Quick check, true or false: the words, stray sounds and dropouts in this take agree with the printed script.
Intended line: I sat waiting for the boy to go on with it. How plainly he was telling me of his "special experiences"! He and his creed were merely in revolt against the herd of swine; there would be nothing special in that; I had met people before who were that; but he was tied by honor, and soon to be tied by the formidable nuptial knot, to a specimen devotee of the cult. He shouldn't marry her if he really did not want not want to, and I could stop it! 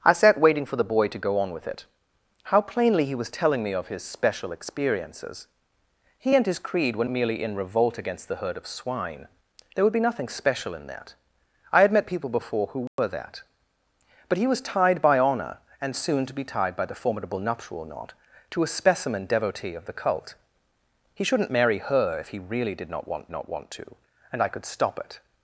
false